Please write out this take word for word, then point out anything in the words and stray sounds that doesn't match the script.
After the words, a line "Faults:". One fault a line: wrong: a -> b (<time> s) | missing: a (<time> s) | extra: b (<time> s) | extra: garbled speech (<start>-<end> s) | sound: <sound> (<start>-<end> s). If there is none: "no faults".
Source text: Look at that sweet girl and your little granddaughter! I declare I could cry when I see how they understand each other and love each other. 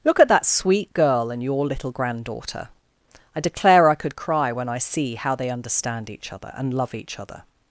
Look at that sweet girl and your little granddaughter! I declare I could cry when I see how they understand each other and love each other.
Faults:
no faults